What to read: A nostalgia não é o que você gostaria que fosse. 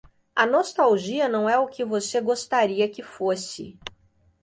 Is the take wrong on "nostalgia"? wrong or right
right